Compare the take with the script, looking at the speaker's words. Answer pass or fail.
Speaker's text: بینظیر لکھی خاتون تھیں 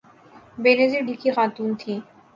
pass